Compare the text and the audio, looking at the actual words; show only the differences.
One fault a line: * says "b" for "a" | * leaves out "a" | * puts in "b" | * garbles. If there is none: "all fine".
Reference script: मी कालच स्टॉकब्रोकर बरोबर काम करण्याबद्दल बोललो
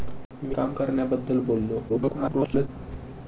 * leaves out "कालच स्टॉकब्रोकर बरोबर"
* garbles